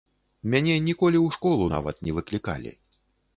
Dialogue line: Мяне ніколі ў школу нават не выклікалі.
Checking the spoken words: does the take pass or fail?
pass